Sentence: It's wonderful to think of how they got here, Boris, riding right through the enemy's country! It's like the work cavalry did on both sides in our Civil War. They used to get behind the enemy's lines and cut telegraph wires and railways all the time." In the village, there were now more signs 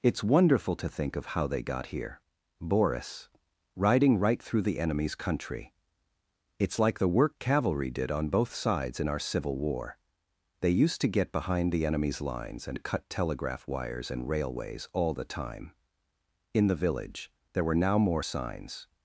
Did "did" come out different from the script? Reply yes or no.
no